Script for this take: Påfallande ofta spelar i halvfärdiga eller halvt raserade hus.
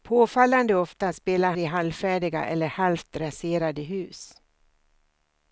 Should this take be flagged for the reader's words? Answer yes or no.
no